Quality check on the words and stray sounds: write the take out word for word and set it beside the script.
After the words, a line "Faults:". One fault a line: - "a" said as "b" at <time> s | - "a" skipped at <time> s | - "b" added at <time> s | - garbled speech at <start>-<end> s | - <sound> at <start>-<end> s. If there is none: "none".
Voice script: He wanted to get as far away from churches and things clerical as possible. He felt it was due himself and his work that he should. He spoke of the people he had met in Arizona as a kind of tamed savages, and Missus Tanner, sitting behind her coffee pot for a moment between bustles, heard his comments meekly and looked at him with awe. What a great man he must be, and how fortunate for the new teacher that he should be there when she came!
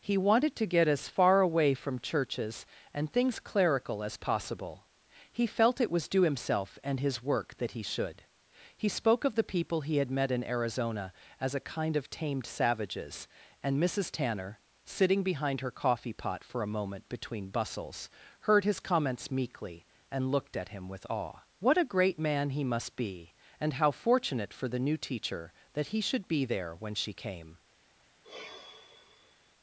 He wanted to get as far away from churches and things clerical as possible. He felt it was due himself and his work that he should. He spoke of the people he had met in Arizona as a kind of tamed savages, and Missus Tanner, sitting behind her coffee pot for a moment between bustles, heard his comments meekly and looked at him with awe. What a great man he must be, and how fortunate for the new teacher that he should be there when she came!
Faults:
- sigh at 28.2-29.5 s